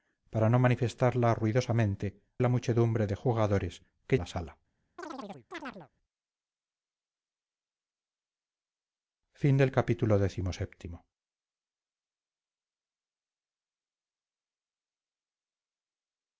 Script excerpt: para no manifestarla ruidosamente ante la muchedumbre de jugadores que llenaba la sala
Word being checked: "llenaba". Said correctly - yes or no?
no